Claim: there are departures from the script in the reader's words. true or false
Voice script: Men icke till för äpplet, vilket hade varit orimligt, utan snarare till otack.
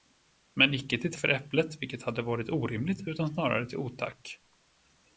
false